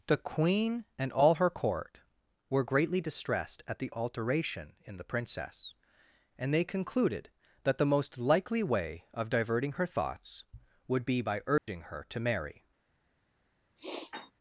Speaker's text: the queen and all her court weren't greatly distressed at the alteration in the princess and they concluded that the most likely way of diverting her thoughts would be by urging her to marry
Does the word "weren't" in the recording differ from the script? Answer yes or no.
yes